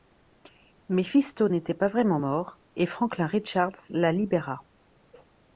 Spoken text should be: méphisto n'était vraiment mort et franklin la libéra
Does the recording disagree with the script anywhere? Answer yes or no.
yes